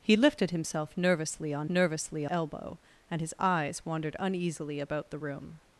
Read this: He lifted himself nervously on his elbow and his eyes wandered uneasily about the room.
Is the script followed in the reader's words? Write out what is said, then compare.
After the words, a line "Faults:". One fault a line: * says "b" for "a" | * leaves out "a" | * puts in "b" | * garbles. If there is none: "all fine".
He lifted himself nervously on nervously elbow and his eyes wandered uneasily about the room.
Faults:
* says "nervously" for "his"